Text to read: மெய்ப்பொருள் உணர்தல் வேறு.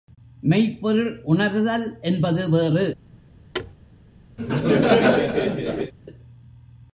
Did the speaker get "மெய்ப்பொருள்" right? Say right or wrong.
right